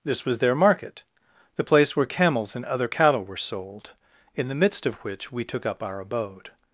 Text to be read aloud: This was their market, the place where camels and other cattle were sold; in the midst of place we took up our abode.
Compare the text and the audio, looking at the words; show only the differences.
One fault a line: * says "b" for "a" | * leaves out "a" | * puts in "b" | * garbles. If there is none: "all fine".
* says "which" for "place"